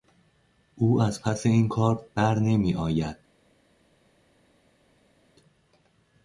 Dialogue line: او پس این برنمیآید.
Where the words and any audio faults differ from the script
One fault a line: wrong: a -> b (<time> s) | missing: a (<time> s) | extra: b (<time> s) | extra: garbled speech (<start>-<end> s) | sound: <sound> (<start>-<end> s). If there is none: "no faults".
extra: از (1.0 s)
extra: کار (1.7 s)